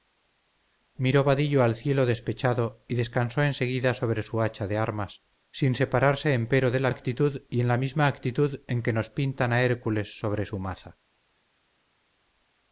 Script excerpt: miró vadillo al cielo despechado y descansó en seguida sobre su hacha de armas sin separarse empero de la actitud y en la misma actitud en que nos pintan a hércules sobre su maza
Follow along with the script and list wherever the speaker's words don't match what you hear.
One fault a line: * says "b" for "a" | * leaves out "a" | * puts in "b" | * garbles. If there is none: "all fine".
all fine